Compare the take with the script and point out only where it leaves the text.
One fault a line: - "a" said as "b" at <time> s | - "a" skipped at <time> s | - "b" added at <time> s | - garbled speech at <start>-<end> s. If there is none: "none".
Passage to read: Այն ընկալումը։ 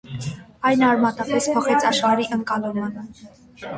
- "արմատապես փոխեց աշխարհի" added at 0.9 s